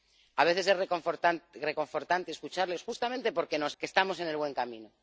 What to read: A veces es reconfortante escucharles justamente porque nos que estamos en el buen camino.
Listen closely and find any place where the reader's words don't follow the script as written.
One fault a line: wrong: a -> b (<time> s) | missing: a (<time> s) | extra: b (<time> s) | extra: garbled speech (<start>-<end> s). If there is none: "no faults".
no faults